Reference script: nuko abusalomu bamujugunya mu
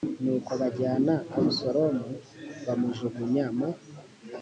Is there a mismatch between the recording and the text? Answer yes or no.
yes